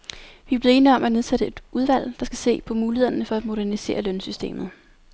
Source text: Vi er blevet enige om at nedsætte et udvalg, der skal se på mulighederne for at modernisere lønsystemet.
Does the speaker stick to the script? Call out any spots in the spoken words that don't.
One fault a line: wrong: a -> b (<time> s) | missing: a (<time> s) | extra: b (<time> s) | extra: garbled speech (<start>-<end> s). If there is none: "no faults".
no faults